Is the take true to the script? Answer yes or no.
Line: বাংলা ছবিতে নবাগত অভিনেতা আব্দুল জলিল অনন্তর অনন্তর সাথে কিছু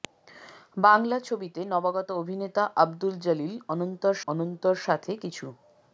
yes